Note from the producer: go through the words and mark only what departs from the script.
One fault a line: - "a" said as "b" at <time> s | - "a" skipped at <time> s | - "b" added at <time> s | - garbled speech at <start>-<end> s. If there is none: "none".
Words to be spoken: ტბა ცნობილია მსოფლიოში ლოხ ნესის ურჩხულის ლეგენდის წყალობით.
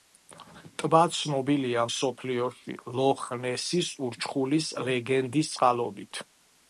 none